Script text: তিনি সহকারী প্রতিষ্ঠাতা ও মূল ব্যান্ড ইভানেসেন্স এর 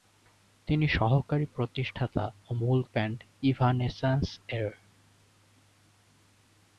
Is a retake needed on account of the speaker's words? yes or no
no